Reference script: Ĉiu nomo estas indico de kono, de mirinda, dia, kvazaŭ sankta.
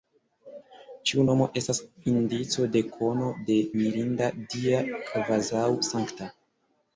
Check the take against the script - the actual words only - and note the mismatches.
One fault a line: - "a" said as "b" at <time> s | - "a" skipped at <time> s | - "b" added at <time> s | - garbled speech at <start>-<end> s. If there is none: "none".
none